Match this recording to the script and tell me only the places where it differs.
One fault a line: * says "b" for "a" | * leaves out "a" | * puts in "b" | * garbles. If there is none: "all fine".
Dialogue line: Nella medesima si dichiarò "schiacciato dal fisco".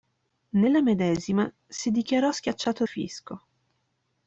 * leaves out "dal"